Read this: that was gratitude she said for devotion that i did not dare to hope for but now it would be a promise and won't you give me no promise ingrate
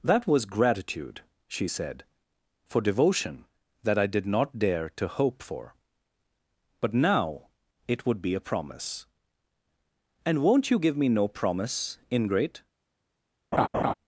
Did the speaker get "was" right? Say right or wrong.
right